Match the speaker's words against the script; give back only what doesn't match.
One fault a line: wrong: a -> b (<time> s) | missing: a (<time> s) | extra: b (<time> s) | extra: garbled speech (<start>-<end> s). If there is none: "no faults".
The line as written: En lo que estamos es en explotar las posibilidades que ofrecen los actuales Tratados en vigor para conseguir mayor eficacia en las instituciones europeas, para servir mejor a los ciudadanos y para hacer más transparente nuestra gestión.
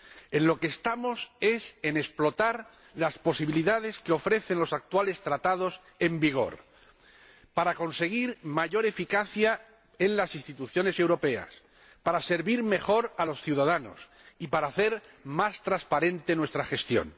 no faults